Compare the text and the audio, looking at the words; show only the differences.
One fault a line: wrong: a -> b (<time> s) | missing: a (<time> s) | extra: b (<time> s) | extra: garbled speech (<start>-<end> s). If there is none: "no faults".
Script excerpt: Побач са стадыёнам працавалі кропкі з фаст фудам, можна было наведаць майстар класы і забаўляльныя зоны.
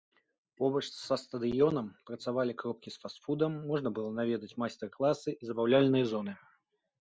no faults